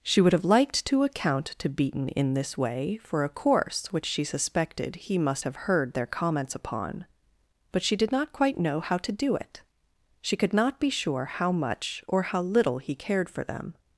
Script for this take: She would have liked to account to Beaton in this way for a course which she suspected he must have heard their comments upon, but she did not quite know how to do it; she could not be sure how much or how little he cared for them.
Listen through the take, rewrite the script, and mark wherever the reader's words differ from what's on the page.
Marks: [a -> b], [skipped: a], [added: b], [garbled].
She would have liked to account to Beaton in this way for a course which she suspected he must have heard their comments upon, but she did not quite know how to do it; she could not be sure how much or how little he cared for them.